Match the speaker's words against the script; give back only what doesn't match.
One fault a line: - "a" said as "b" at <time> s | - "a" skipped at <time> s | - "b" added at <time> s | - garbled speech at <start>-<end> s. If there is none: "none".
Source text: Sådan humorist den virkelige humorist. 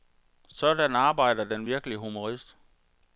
- "humorist" said as "arbejder" at 0.9 s